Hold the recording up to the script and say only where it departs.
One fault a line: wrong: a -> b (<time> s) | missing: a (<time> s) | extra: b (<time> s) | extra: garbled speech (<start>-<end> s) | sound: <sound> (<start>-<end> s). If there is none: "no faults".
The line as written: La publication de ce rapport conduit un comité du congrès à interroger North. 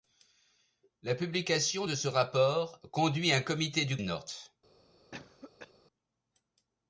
missing: congrès à interroger (4.0 s)
sound: cough (5.1-5.7 s)